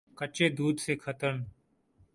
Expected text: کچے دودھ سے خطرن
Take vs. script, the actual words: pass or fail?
pass